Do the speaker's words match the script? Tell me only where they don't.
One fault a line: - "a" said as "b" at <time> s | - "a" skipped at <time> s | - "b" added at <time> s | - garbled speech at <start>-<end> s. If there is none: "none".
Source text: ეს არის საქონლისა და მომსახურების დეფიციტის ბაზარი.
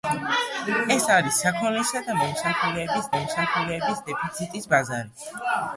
- "მომსახურების" added at 3.1 s